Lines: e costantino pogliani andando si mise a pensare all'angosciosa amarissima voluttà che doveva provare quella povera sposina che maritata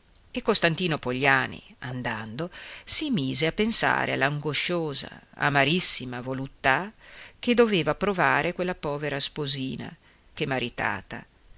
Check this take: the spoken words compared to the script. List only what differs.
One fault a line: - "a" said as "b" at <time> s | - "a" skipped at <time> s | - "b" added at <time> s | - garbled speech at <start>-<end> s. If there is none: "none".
none